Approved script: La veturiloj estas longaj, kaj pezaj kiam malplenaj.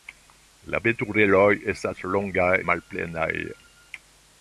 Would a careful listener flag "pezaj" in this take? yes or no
yes